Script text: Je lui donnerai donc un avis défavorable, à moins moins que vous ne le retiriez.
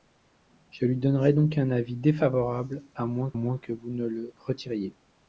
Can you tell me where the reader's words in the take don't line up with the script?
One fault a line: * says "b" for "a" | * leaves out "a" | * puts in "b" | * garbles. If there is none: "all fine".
all fine